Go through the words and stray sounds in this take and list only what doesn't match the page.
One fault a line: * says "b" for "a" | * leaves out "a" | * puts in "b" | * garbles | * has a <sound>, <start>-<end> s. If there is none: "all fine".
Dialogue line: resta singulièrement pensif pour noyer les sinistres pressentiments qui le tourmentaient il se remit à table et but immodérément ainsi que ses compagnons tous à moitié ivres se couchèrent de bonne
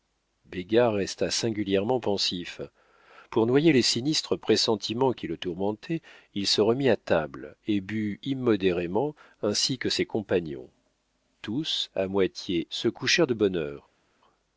* leaves out "ivres"